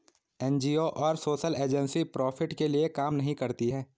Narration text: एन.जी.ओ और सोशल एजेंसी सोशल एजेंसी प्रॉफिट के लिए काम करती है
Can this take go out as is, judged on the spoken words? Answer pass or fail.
fail